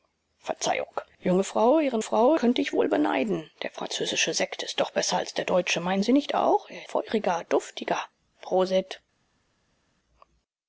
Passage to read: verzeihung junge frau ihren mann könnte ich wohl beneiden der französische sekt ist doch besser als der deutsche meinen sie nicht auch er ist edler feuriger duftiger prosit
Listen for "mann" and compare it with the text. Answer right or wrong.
wrong